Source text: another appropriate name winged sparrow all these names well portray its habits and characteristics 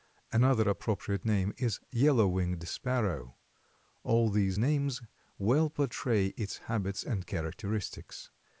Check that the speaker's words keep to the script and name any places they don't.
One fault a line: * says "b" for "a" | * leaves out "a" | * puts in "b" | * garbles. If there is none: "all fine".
* puts in "is yellow"